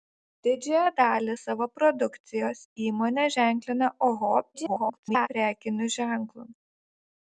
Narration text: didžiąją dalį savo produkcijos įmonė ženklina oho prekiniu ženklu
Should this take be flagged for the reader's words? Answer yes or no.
yes